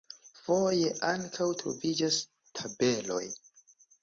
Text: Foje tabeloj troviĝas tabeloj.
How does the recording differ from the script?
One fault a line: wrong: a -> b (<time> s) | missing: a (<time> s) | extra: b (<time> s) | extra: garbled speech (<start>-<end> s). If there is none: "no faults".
wrong: tabeloj -> ankaŭ (1.1 s)